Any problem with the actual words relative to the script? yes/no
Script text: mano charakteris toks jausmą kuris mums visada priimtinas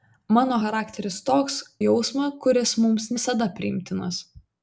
no